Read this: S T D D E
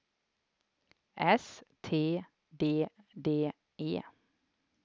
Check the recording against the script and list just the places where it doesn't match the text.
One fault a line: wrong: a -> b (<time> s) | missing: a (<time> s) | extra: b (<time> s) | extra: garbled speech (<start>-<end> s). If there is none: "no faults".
no faults